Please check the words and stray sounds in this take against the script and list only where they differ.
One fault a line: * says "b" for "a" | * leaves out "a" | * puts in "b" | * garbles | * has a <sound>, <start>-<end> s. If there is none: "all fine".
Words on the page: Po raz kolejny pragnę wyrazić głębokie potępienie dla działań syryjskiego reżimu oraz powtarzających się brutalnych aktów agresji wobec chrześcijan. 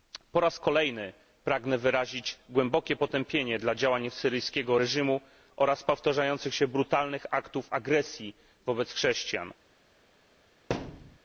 * has a thud, 10.7-11.2 s